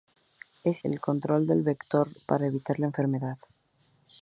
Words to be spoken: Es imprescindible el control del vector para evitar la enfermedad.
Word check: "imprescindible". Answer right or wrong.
wrong